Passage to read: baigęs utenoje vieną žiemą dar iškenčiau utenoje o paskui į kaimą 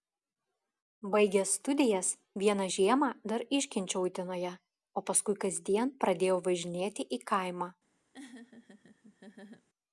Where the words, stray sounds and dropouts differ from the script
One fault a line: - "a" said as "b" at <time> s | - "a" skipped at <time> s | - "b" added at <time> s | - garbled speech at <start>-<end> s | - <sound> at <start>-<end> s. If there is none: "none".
- "utenoje" said as "studijas" at 1.6 s
- "kasdien pradėjau važinėti" added at 5.5 s
- laugh at 8.1-9.7 s